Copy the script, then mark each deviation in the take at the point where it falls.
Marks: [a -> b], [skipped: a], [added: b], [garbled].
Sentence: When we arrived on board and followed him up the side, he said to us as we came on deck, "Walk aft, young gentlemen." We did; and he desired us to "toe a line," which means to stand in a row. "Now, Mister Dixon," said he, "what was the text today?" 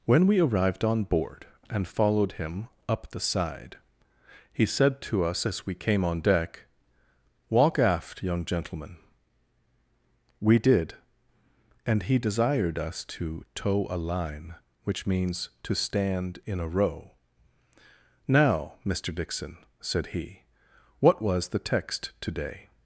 When we arrived on board and followed him up the side, he said to us as we came on deck, "Walk aft, young gentlemen." We did; and he desired us to "toe a line," which means to stand in a row. "Now, Mister Dixon," said he, "what was the text today?"